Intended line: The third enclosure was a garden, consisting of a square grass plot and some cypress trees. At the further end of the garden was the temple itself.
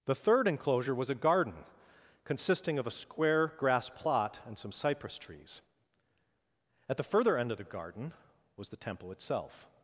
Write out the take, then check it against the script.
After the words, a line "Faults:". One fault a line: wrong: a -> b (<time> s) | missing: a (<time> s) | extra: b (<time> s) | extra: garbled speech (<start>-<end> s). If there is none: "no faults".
The third enclosure was a garden, consisting of a square grass plot and some cypress trees. At the further end of the garden was the temple itself.
Faults:
no faults